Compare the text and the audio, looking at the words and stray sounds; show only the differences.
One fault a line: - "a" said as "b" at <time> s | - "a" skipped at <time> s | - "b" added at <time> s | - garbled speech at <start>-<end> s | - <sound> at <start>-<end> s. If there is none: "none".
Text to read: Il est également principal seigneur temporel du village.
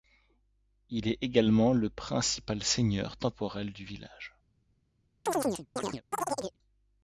- "le" added at 1.7 s
- chirp at 5.3-6.6 s